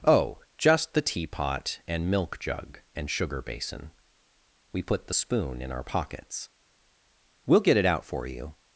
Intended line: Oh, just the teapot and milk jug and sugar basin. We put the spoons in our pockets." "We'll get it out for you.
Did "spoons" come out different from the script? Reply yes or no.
yes